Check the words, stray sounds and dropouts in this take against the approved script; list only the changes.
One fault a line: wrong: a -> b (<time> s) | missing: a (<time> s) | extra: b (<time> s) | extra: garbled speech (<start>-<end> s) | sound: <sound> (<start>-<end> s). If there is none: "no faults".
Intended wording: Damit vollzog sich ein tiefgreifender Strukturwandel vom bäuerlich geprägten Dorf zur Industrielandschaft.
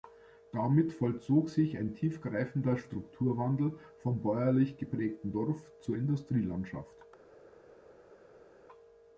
no faults